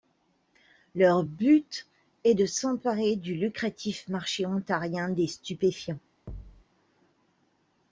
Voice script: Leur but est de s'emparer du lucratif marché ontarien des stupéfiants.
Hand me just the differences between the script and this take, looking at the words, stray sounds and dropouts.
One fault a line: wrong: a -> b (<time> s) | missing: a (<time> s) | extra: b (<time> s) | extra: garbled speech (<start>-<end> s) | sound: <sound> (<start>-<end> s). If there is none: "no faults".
sound: thud (6.3-6.6 s)